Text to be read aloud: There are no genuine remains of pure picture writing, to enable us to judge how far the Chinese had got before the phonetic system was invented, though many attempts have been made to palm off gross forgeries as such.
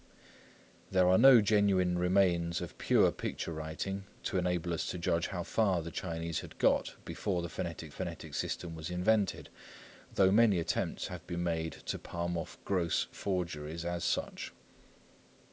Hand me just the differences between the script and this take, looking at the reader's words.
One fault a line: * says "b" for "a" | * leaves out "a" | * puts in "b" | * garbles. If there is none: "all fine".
* puts in "phonetic"